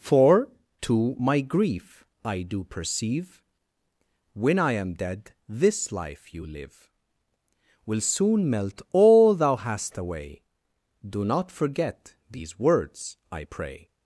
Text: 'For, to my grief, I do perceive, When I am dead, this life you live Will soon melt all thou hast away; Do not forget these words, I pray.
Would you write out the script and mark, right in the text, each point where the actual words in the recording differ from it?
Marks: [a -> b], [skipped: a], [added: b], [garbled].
'For, to my grief, I do perceive, When I am dead, this life you live Will soon melt all thou hast away; Do not forget these words, I pray.